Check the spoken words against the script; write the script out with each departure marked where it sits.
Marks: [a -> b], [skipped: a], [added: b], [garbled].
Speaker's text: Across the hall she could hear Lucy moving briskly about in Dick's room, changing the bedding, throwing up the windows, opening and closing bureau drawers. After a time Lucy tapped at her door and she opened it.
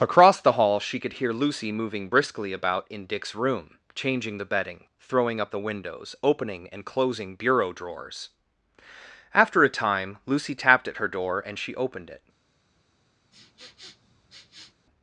Across the hall she could hear Lucy moving briskly about in Dick's room, changing the bedding, throwing up the windows, opening and closing bureau drawers. After a time Lucy tapped at her door and she opened it.